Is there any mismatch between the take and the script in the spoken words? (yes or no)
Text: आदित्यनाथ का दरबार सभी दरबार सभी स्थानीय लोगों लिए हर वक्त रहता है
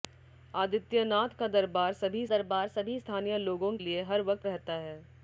no